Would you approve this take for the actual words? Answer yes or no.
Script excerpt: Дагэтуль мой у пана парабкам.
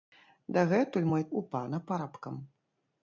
yes